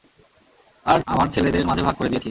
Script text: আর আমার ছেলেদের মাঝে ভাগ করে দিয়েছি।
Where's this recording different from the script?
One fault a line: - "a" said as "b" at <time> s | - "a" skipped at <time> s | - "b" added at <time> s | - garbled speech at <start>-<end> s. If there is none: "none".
none